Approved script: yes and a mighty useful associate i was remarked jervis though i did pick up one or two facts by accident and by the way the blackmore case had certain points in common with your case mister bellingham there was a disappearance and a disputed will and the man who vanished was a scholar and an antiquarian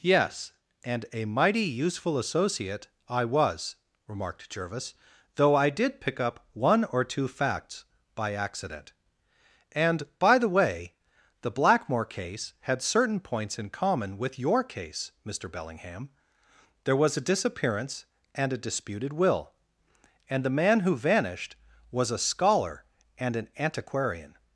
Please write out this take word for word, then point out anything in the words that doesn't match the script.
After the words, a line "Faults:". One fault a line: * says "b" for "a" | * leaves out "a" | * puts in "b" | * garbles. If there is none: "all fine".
yes and a mighty useful associate i was remarked jervis though i did pick up one or two facts by accident and by the way the blackmore case had certain points in common with your case mister bellingham there was a disappearance and a disputed will and the man who vanished was a scholar and an antiquarian
Faults:
all fine